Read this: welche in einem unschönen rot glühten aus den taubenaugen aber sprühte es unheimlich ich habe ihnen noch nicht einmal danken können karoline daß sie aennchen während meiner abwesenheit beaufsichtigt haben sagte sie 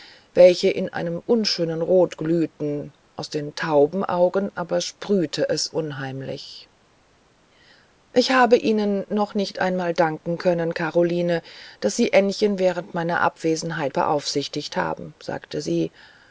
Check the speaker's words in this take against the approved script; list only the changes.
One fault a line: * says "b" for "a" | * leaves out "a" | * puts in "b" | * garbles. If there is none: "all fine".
all fine